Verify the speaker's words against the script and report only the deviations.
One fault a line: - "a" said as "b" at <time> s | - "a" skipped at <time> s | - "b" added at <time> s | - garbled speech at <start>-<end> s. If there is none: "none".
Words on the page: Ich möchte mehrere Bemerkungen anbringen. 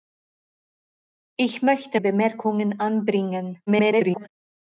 - "mehrere" skipped at 2.0 s
- garbled speech at 3.7-4.3 s